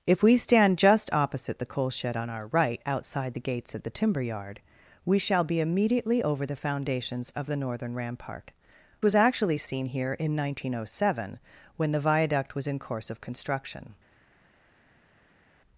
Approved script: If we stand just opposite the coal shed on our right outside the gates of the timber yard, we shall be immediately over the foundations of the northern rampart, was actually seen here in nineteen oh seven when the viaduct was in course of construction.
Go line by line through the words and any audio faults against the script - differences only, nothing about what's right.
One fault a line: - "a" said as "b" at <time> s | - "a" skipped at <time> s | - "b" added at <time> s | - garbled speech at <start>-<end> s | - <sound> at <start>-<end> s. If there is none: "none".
none